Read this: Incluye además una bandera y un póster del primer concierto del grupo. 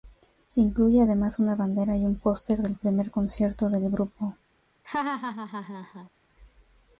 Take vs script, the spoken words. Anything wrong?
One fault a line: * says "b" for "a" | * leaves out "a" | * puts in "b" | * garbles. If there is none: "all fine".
all fine